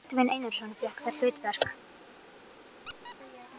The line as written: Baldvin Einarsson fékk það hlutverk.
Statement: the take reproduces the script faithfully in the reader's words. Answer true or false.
true